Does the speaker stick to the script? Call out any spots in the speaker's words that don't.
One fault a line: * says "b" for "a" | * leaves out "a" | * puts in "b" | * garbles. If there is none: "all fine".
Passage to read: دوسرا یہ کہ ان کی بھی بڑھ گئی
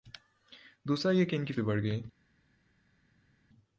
all fine